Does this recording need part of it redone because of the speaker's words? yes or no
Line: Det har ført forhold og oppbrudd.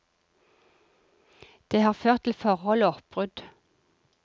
yes